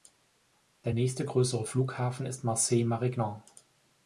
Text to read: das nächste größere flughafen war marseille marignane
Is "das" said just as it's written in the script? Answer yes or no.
no